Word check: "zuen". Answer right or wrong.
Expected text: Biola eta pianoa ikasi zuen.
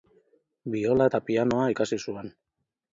right